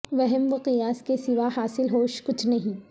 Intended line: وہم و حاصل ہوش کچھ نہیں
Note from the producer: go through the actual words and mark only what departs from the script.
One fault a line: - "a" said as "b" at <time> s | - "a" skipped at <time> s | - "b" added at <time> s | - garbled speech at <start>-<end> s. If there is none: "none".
- "قیاس کے سوا" added at 0.6 s